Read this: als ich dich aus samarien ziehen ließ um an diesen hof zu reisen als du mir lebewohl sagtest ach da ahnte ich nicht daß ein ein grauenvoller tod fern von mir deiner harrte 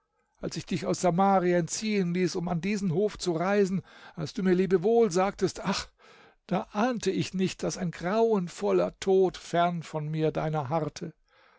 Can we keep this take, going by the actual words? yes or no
no